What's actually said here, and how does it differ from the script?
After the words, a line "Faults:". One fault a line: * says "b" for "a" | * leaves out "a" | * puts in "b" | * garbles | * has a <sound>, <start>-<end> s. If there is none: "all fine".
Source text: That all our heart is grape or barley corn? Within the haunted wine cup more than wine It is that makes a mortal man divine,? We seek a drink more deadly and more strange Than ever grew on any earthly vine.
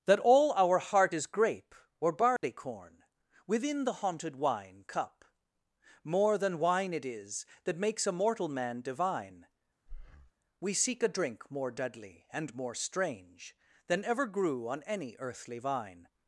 That all our heart is grape or barley corn? Within the haunted wine cup more than wine It is that makes a mortal man divine,? We seek a drink more deadly and more strange Than ever grew on any earthly vine.
Faults:
* has a dropout, 2.4-2.4 s
* has a breath, 9.9-10.3 s